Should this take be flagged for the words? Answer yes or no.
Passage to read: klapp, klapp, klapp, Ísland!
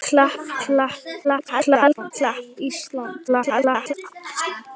yes